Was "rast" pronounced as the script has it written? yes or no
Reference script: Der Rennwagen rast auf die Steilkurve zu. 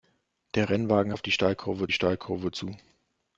no